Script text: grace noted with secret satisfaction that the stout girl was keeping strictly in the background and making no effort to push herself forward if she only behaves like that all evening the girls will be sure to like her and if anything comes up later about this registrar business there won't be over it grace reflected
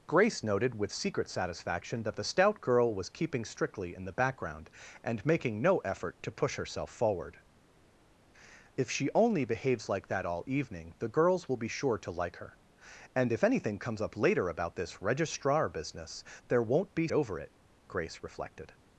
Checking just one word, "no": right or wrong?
right